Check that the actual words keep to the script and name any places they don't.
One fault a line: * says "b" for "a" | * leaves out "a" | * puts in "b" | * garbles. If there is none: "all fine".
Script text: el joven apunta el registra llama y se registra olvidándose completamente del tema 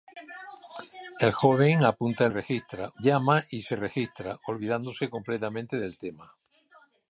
all fine